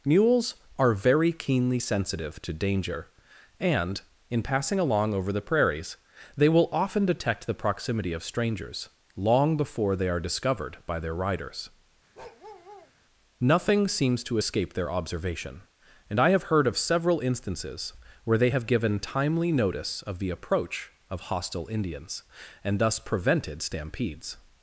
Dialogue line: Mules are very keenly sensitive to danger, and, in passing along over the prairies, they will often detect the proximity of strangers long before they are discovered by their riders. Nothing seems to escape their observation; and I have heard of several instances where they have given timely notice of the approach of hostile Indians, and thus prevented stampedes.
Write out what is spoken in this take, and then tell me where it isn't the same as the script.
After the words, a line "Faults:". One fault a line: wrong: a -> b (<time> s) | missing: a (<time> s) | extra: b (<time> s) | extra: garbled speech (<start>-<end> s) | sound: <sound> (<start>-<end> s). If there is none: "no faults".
Mules are very keenly sensitive to danger, and, in passing along over the prairies, they will often detect the proximity of strangers long before they are discovered by their riders. Nothing seems to escape their observation; and I have heard of several instances where they have given timely notice of the approach of hostile Indians, and thus prevented stampedes.
Faults:
sound: bark (12.1-12.9 s)